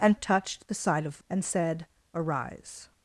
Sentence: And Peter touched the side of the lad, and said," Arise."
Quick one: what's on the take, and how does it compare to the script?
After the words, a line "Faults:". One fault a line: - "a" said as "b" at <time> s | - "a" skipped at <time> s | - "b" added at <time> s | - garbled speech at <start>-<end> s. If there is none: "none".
And Touched the side of the and said," Arise."
Faults:
- "Peter" skipped at 0.2 s
- "lad" skipped at 1.2 s